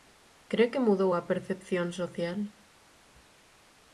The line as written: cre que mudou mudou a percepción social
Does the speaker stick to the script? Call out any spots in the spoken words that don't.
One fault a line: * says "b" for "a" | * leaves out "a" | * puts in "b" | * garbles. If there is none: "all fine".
* leaves out "mudou"